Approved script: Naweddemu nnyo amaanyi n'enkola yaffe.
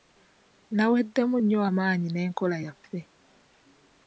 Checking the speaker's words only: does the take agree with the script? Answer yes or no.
yes